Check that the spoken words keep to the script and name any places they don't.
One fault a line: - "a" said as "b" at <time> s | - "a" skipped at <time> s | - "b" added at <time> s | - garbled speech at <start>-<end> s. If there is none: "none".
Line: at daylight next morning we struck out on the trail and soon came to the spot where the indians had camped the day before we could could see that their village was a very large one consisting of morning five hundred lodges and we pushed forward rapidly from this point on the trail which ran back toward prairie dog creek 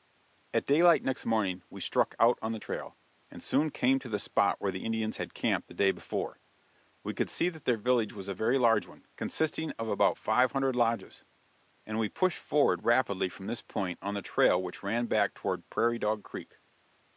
- "could" skipped at 7.3 s
- "morning" said as "about" at 9.9 s